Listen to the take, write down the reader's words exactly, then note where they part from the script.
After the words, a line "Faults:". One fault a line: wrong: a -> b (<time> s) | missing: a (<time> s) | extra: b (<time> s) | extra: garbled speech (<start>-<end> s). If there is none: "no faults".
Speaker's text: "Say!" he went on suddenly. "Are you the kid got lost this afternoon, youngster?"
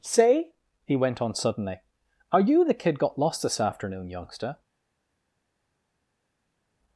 "Say!" he went on suddenly. "Are you the kid got lost this afternoon, youngster?"
Faults:
no faults